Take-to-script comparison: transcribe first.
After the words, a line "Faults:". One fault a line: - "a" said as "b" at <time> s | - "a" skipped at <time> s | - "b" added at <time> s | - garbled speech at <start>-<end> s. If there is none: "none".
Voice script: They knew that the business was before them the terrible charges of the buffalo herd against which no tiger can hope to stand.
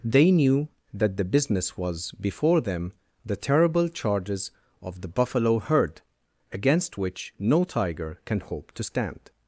They knew that the business was before them the terrible charges of the buffalo herd against which no tiger can hope to stand.
Faults:
none